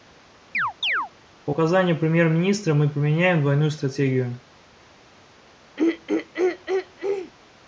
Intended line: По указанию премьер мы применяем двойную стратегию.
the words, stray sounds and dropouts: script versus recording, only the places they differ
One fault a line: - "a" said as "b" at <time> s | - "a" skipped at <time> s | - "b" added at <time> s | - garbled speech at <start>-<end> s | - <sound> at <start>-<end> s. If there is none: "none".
- chirp at 0.5-1.1 s
- "министра" added at 2.3 s
- throat clearing at 5.8-7.3 s